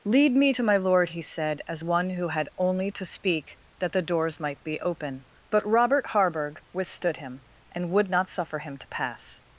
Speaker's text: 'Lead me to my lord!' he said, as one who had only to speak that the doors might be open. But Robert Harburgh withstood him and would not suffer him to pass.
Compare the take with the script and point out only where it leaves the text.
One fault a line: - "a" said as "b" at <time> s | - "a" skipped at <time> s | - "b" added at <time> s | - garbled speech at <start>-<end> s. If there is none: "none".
none